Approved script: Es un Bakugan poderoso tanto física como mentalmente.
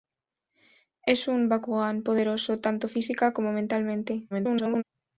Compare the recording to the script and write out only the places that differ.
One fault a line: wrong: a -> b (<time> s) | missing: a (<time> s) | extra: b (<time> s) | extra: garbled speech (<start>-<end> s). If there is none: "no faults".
extra: garbled speech (4.3-4.8 s)